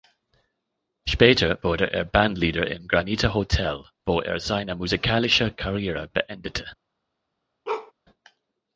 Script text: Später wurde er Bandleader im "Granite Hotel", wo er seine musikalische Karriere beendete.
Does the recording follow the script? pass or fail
pass